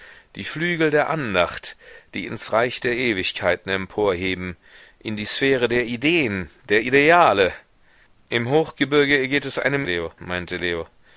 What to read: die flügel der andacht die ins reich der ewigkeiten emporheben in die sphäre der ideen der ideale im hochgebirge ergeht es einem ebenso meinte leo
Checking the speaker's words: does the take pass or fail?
fail